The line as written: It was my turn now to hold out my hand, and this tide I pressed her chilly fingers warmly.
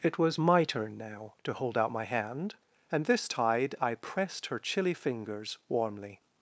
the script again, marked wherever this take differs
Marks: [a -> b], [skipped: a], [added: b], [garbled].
It was my turn now to hold out my hand, and this tide I pressed her chilly fingers warmly.